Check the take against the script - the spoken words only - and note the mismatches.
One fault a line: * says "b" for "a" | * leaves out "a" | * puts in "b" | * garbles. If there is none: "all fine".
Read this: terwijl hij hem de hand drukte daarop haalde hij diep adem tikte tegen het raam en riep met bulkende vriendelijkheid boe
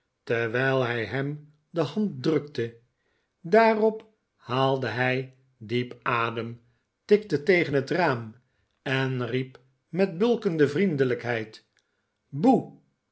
all fine